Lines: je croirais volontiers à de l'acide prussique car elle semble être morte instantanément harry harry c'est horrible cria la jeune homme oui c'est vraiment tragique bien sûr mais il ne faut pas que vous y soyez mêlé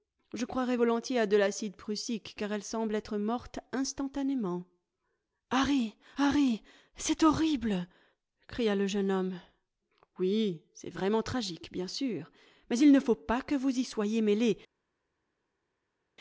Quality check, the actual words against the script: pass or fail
fail